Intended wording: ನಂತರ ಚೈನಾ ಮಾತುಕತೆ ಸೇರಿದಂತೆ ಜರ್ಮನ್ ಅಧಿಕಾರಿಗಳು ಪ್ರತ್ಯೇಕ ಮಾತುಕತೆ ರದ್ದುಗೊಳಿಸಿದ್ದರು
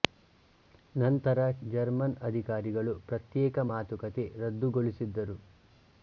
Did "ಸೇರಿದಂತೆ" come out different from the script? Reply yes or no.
yes